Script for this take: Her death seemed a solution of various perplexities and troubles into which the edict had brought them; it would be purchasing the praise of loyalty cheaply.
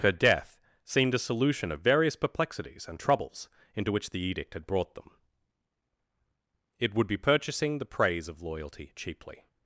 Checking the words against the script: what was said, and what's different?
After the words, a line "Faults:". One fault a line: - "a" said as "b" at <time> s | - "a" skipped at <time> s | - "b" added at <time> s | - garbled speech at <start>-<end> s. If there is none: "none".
Her death seemed a solution of various perplexities and troubles into which the edict had brought them; it would be purchasing the praise of loyalty cheaply.
Faults:
none